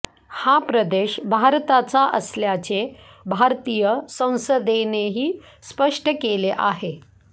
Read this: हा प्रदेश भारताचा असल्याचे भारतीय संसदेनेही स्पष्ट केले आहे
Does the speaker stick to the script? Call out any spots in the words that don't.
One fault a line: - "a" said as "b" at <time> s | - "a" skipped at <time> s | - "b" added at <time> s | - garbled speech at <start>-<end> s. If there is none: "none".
none